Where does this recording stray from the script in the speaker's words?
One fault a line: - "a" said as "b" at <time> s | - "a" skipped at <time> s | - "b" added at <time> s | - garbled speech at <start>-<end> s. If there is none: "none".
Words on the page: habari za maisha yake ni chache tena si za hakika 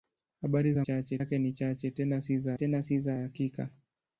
- "maisha" said as "chache" at 0.8 s
- "tena si za" added at 2.5 s